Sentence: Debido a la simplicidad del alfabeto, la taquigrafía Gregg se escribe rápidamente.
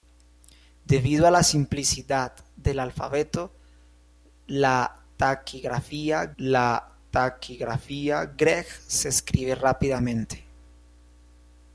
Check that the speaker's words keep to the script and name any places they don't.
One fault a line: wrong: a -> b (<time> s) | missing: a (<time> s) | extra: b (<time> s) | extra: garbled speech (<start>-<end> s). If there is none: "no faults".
extra: la taquigrafía (6.4 s)